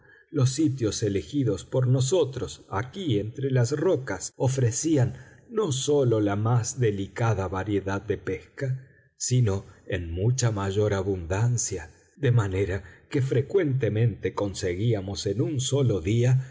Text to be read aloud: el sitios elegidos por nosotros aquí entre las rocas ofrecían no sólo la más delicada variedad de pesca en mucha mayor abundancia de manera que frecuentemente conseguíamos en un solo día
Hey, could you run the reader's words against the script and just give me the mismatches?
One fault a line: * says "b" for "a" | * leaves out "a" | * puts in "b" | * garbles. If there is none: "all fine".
* says "los" for "el"
* puts in "sino"